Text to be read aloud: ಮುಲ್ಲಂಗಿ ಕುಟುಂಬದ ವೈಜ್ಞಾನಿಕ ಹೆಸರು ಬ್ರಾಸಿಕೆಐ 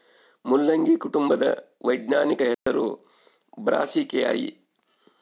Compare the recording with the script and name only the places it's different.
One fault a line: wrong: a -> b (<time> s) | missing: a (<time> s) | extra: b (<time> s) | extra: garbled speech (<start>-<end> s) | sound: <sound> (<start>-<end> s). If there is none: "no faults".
sound: dropout (2.5-2.7 s)